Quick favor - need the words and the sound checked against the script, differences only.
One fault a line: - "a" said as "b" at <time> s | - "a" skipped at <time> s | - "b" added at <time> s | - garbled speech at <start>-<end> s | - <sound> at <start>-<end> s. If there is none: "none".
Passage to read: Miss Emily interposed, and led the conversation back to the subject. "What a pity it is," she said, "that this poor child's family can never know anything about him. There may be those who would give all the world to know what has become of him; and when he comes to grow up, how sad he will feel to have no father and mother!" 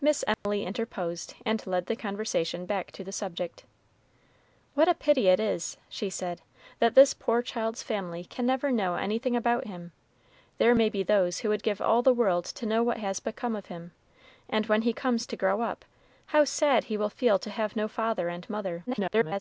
- dropout at 0.3-0.5 s
- garbled speech at 18.9-19.4 s